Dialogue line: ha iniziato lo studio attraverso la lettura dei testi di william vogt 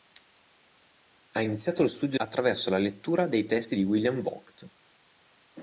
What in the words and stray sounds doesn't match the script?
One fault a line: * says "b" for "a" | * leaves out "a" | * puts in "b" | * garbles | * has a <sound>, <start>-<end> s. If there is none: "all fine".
all fine